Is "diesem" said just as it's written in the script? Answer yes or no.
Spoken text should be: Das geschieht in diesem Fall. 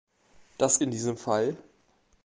yes